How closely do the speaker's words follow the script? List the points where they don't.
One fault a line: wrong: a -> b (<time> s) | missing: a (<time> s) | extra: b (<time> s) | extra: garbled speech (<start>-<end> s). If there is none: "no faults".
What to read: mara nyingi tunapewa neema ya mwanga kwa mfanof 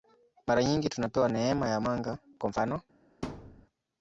no faults